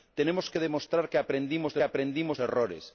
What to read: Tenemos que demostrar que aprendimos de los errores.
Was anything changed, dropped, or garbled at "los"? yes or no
yes